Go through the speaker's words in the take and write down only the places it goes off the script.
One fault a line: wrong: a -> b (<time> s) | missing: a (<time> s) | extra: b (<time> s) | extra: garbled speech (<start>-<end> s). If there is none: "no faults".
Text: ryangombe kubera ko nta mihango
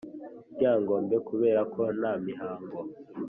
no faults